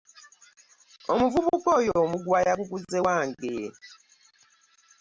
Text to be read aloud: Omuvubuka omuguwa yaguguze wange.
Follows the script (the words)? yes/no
no